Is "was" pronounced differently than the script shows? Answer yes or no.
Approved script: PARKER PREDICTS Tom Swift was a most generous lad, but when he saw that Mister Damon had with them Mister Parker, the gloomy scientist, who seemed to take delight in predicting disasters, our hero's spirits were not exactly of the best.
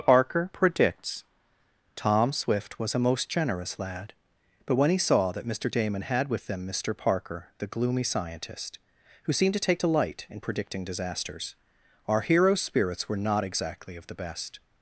no